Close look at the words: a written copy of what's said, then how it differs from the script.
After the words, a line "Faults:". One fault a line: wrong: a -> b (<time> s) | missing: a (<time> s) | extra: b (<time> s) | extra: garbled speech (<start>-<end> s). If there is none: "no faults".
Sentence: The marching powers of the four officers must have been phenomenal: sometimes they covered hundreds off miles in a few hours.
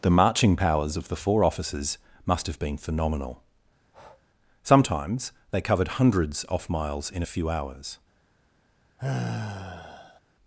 The marching powers of the four officers must have been phenomenal: sometimes they covered hundreds off miles in a few hours.
Faults:
no faults